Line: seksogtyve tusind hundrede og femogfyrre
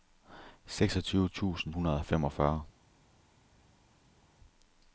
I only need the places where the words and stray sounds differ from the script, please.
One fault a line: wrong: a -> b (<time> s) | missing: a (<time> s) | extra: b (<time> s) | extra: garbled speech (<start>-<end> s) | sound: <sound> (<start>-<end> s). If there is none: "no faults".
no faults